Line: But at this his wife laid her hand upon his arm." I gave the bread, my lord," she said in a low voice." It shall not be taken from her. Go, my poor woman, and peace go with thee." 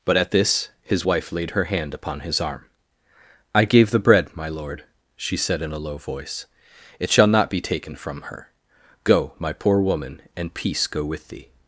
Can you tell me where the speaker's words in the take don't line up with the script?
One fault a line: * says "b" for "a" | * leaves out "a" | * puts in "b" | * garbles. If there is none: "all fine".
all fine